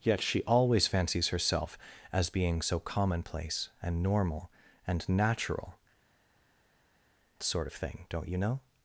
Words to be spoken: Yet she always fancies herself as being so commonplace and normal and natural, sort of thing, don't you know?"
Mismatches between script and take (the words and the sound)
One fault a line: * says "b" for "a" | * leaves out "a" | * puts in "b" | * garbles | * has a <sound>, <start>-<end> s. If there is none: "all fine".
all fine